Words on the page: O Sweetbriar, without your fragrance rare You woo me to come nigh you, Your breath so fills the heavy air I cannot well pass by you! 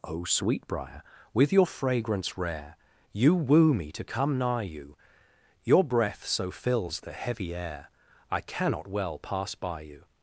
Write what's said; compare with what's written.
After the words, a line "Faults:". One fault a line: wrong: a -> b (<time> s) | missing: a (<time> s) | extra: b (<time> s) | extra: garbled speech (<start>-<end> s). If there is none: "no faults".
O Sweetbriar, with your fragrance rare You woo me to come nigh you, Your breath so fills the heavy air I cannot well pass by you!
Faults:
wrong: without -> with (1.3 s)